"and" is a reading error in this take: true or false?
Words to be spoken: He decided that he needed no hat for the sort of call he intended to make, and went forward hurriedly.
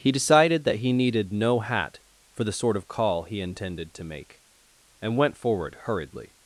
false